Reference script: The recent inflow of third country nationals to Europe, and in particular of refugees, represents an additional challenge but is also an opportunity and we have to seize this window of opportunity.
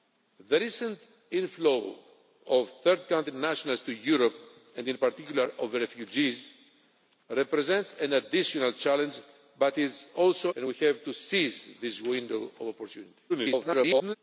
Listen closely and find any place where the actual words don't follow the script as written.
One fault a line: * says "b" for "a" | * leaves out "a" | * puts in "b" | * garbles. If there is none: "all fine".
* leaves out "an opportunity"
* garbles